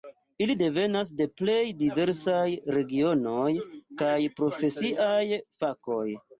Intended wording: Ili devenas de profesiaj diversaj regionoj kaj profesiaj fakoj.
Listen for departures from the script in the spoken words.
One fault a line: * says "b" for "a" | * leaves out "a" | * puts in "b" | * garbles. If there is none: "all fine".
* says "plej" for "profesiaj"